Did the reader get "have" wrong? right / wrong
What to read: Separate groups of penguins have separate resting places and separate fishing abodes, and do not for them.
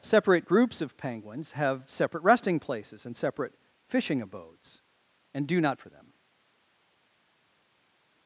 right